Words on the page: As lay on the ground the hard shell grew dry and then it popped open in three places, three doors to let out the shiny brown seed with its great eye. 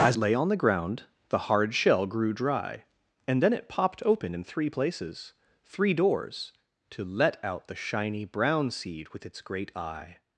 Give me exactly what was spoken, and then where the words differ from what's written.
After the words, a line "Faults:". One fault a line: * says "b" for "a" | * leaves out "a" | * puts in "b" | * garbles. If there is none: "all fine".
As lay on the ground the hard shell grew dry and then it popped open in three places, three doors to let out the shiny brown seed with its great eye.
Faults:
all fine